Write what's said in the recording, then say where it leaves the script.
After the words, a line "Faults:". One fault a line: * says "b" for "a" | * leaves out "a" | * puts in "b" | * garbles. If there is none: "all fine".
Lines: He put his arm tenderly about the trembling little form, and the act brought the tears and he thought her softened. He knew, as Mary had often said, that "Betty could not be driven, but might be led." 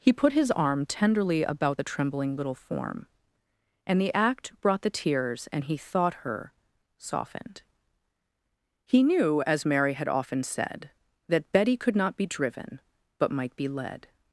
He put his arm tenderly about the trembling little form, and the act brought the tears and he thought her softened. He knew, as Mary had often said, that "Betty could not be driven, but might be led."
Faults:
all fine